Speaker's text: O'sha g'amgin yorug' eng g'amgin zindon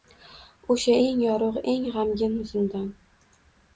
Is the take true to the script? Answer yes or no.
no